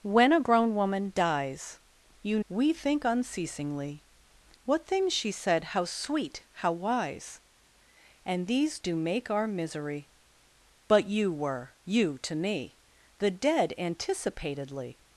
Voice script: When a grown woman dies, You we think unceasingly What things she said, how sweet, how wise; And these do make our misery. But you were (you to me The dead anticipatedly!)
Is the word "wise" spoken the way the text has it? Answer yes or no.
yes